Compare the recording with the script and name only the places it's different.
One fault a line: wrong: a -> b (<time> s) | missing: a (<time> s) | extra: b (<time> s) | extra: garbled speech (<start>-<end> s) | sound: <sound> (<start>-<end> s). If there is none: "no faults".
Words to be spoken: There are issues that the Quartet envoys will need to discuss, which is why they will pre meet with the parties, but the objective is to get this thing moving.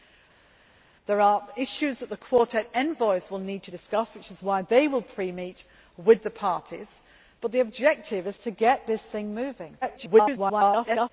extra: garbled speech (9.8-11.1 s)